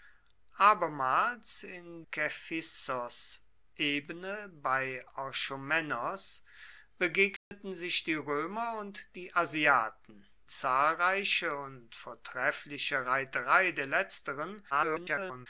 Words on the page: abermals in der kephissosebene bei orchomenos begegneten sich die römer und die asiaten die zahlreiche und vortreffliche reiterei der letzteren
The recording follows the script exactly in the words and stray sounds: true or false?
false